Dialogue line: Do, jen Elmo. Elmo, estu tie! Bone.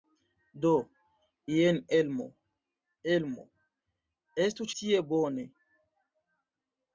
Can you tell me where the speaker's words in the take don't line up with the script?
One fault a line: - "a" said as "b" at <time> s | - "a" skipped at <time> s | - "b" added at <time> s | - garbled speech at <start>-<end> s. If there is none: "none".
none